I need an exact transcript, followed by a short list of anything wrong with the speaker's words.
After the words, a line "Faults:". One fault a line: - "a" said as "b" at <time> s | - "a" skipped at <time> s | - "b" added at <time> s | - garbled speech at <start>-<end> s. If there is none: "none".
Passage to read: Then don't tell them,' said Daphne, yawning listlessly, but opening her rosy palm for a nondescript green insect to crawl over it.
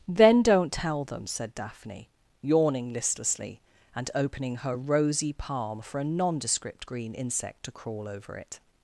Then don't tell them,' said Daphne, yawning listlessly, and opening her rosy palm for a nondescript green insect to crawl over it.
Faults:
- "but" said as "and" at 4.0 s